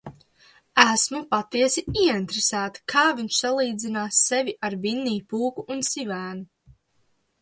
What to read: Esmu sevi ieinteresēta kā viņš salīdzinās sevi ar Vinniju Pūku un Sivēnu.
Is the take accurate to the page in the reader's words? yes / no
no